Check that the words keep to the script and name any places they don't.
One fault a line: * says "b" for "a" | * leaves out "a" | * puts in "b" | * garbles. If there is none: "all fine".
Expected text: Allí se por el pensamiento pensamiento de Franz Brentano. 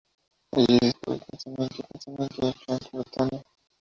all fine